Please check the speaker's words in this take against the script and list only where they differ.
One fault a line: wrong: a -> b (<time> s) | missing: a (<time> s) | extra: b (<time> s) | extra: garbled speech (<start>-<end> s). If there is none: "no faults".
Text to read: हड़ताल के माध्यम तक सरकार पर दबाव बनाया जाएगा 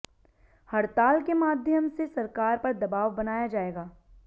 wrong: तक -> से (1.9 s)